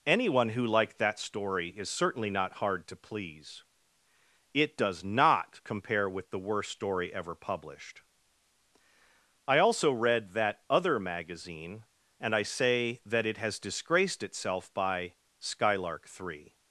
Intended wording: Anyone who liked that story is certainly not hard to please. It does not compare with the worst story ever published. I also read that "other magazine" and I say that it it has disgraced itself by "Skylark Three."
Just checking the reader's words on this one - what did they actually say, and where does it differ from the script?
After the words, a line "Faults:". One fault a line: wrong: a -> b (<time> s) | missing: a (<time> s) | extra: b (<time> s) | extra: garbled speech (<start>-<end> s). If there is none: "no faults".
Anyone who liked that story is certainly not hard to please. It does not compare with the worst story ever published. I also read that "other magazine" and I say that it has disgraced itself by "Skylark Three."
Faults:
missing: it (13.4 s)